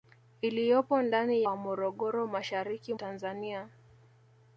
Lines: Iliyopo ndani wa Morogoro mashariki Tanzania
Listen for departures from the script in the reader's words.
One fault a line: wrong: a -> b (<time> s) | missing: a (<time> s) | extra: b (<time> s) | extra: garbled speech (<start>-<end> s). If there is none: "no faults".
no faults